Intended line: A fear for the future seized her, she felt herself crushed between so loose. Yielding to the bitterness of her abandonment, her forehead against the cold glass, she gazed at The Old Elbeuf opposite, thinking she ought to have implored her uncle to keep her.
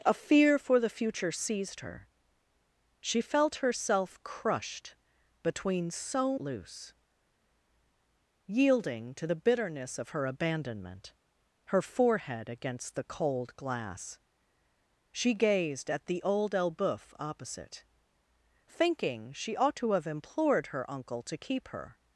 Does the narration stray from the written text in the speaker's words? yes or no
no